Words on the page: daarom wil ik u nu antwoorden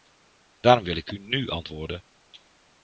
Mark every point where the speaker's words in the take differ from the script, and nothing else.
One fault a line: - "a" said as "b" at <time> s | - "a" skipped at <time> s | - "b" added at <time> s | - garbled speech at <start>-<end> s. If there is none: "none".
none